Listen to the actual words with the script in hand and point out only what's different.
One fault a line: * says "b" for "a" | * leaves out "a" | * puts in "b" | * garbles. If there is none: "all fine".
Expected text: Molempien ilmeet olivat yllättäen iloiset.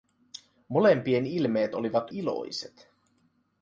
* leaves out "yllättäen"